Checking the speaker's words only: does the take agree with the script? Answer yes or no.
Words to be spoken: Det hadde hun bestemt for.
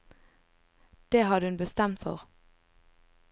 yes